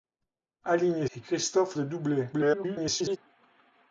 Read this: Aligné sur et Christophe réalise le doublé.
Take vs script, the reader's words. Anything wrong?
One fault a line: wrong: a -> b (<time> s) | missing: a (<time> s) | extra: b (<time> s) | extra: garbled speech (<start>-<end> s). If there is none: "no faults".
missing: sur (1.1 s)
missing: réalise (1.8 s)
extra: garbled speech (2.3-3.2 s)